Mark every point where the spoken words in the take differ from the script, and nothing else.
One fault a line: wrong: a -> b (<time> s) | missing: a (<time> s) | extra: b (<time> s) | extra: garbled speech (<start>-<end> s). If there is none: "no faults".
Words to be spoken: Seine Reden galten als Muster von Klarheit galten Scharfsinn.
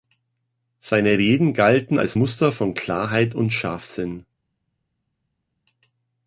wrong: galten -> und (3.3 s)